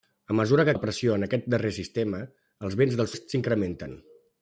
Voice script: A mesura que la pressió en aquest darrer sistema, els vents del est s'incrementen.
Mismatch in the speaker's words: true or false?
false